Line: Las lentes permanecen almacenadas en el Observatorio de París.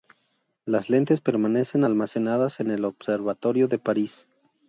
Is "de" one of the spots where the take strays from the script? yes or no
no